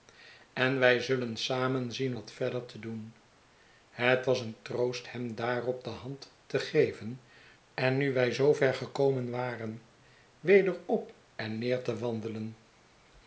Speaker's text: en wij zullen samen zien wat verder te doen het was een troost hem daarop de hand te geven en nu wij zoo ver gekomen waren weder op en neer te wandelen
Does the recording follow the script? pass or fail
pass